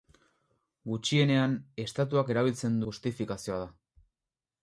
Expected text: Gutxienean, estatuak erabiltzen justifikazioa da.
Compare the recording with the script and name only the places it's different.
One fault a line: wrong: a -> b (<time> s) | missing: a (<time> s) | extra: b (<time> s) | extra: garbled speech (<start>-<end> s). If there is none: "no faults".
no faults